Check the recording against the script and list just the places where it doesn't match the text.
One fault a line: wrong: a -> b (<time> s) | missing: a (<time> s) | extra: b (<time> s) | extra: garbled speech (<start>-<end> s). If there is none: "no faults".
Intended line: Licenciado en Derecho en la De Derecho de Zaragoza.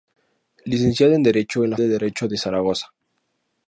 no faults